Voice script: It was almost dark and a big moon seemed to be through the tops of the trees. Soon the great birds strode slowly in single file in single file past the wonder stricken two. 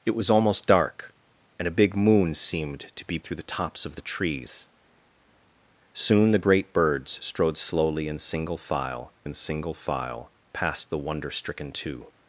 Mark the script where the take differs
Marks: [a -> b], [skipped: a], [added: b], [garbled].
It was almost dark and a big moon seemed to be through the tops of the trees. Soon the great birds strode slowly in single file in single file past the wonder stricken two.